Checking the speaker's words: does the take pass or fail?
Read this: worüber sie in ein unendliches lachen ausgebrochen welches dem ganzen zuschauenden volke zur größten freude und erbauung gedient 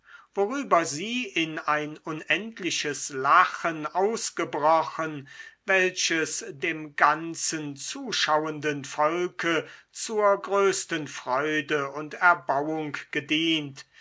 pass